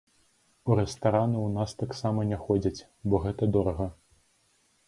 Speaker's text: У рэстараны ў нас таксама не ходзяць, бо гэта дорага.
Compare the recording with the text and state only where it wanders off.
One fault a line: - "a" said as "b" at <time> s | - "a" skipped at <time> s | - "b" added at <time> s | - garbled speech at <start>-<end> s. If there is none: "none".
none